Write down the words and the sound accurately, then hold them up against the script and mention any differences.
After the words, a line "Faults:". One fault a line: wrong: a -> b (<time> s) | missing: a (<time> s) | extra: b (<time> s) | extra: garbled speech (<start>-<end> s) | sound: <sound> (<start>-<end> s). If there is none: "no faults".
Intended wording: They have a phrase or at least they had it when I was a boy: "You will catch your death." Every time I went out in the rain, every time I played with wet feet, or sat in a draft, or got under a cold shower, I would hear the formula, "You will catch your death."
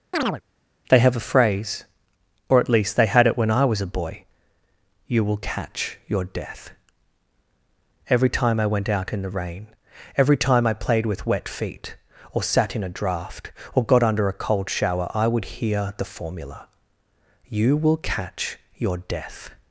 They have a phrase or at least they had it when I was a boy: "You will catch your death." Every time I went out in the rain, every time I played with wet feet, or sat in a draft, or got under a cold shower, I would hear the formula, "You will catch your death."
Faults:
sound: chirp (0.1-0.4 s)